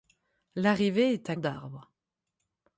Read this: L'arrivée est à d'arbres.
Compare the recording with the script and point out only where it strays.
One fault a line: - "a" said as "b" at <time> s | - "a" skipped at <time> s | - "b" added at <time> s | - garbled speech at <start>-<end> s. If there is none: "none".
none